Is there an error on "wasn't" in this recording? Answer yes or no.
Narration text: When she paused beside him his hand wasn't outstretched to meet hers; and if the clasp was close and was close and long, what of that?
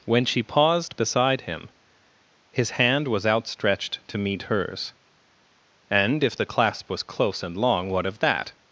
yes